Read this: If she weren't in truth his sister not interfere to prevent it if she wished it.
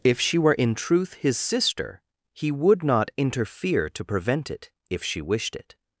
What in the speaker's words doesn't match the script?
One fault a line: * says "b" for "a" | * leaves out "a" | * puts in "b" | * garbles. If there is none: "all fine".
* says "were" for "weren't"
* puts in "he would"